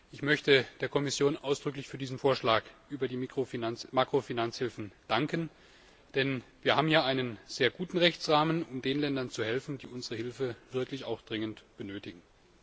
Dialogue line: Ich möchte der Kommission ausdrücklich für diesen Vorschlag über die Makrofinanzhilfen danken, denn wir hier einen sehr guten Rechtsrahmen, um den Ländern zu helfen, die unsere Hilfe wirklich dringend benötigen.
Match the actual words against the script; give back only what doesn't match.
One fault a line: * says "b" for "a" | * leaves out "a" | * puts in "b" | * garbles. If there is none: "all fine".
* puts in "haben"